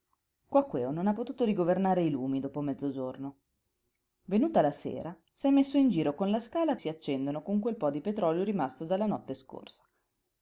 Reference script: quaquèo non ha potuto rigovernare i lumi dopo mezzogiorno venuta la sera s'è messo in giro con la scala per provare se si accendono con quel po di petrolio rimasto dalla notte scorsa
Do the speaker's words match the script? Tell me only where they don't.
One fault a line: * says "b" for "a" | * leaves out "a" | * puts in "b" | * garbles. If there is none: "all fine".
* leaves out "per provare se"